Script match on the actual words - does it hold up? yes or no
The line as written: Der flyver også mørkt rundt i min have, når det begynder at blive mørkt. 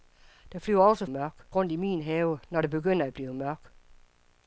yes